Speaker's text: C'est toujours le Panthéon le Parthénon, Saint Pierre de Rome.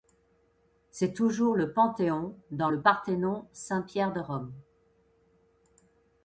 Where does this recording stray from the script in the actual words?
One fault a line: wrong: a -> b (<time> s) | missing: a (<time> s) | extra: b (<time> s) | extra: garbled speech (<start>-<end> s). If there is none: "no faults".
extra: dans (2.5 s)